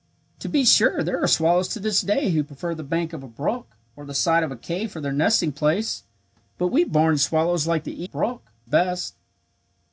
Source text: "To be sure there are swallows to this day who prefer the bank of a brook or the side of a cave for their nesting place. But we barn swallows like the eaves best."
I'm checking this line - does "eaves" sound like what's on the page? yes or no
no